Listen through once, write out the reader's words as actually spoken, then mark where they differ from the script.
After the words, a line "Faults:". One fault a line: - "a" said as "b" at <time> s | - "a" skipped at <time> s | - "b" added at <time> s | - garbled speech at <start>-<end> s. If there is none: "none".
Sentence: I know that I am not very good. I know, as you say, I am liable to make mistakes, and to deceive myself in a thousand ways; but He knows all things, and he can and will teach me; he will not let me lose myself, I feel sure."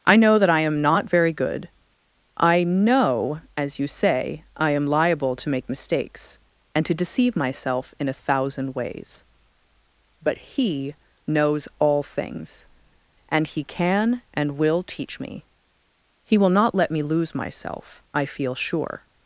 I know that I am not very good. I know, as you say, I am liable to make mistakes, and to deceive myself in a thousand ways; but He knows all things, and he can and will teach me; he will not let me lose myself, I feel sure."
Faults:
none